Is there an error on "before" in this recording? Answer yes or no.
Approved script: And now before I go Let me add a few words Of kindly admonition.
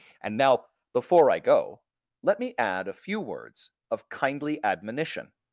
no